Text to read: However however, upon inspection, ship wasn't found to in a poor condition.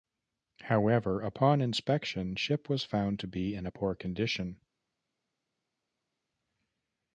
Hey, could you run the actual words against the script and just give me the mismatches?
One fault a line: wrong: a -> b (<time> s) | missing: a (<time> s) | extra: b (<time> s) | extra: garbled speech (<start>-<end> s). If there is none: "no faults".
missing: however (1.2 s)
wrong: wasn't -> was (2.7 s)
extra: be (3.3 s)